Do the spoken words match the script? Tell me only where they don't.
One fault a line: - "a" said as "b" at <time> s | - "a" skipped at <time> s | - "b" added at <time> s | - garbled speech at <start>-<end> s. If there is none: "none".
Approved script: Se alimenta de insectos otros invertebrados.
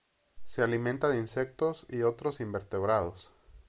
- "y" added at 1.9 s